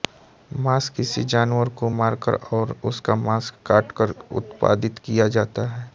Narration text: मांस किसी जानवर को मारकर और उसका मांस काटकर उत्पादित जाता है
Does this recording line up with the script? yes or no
no